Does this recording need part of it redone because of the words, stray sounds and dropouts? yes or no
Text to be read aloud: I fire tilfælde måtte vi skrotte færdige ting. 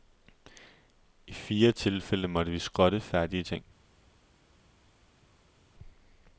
no